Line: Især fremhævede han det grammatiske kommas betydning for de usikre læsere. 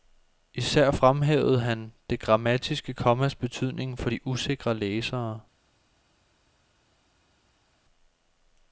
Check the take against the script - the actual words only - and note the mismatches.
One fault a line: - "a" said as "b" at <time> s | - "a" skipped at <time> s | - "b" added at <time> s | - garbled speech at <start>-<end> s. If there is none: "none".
none